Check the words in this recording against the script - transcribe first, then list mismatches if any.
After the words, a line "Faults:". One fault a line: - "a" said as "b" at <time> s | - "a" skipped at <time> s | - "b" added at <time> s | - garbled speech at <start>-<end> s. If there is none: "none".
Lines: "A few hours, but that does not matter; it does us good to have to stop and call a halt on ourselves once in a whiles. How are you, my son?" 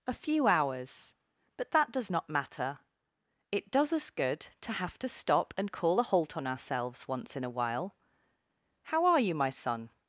"A few hours, but that does not matter; it does us good to have to stop and call a halt on ourselves once in a while. How are you, my son?"
Faults:
- "whiles" said as "while" at 7.5 s